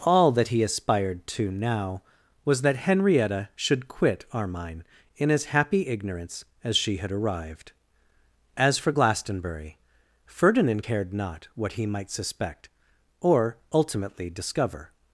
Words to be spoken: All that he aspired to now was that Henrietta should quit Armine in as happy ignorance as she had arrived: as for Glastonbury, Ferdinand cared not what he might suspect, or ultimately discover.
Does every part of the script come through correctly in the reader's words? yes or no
yes